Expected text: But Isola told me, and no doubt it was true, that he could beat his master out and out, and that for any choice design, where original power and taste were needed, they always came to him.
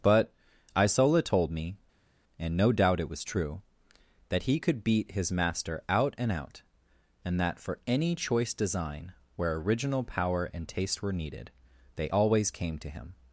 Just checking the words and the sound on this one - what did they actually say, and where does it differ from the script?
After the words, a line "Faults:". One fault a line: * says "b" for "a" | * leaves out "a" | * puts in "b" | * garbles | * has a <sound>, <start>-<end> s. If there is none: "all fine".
But Isola told me, and no doubt it was true, that he could beat his master out and out, and that for any choice design, where original power and taste were needed, they always came to him.
Faults:
all fine